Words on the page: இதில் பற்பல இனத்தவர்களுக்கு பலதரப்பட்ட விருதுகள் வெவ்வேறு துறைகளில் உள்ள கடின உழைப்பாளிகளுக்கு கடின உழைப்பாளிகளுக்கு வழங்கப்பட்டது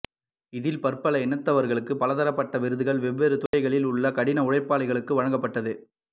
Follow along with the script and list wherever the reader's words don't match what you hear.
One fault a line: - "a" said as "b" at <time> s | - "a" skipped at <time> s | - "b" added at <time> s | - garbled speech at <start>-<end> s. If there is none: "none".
- "கடின உழைப்பாளிகளுக்கு" skipped at 5.1 s